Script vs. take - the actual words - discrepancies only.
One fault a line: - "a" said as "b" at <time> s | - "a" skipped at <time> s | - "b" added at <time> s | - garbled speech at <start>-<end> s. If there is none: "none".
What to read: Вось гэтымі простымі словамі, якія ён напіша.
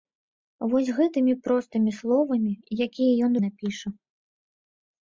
none